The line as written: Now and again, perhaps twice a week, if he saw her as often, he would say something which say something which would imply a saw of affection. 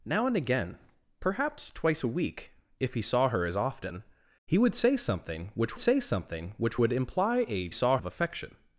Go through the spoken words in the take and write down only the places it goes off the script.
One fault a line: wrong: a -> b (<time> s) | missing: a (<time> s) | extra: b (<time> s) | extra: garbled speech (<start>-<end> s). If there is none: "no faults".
no faults